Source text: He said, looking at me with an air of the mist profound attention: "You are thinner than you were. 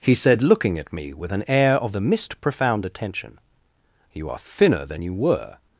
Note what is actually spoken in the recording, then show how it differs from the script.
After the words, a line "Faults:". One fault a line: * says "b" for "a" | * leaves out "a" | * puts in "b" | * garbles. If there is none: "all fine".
He said, looking at me with an air of the mist profound attention: "You are thinner than you were.
Faults:
all fine